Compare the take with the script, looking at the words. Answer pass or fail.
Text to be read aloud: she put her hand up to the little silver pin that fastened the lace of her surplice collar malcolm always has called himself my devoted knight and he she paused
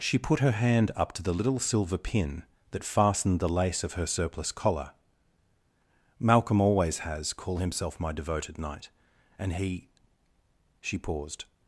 fail